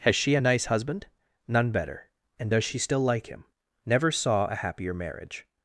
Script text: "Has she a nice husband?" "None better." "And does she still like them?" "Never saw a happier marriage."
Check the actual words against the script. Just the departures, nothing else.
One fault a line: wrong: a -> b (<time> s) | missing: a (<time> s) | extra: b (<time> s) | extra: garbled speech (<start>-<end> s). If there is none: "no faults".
wrong: them -> him (3.3 s)